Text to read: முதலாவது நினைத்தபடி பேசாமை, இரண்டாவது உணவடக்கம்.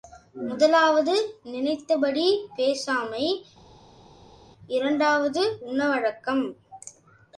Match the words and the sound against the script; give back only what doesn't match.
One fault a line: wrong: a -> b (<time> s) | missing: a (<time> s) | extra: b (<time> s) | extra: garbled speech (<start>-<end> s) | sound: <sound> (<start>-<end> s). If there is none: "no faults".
no faults